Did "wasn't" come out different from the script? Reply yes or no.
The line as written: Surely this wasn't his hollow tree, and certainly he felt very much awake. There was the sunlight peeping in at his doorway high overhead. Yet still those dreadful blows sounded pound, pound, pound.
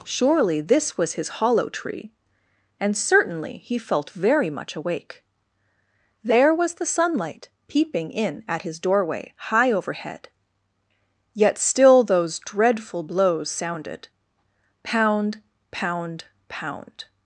yes